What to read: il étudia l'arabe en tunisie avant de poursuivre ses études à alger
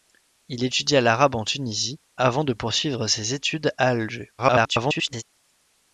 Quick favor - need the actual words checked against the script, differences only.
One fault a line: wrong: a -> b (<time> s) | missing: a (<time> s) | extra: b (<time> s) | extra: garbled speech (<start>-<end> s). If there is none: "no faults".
extra: garbled speech (4.4-5.2 s)